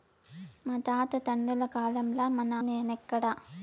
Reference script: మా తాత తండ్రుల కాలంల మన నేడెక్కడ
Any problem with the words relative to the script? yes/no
no